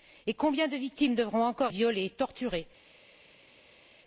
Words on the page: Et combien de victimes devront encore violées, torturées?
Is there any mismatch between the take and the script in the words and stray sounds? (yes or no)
no